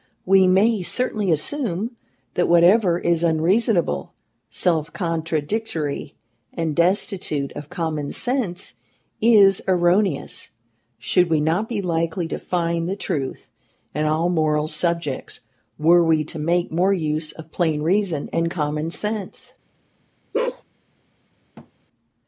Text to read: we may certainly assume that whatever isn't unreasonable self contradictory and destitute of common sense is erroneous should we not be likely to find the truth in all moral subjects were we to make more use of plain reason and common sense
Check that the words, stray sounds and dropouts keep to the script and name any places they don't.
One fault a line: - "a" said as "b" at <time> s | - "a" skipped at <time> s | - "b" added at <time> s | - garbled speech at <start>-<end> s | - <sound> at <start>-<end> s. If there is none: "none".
- "isn't" said as "is" at 3.0 s
- bark at 20.3-20.6 s
- thud at 21.6-21.7 s